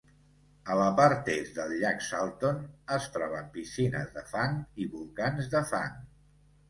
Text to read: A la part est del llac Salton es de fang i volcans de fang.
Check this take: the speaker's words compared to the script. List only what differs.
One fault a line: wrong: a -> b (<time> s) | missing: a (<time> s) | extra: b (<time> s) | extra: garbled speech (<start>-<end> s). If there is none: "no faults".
extra: troben piscines (3.2 s)